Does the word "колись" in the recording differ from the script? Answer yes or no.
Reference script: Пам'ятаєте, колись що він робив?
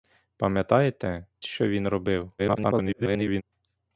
yes